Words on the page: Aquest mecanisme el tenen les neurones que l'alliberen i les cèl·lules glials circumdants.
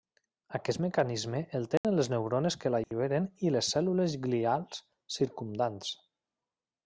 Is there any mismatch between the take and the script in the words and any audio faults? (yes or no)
yes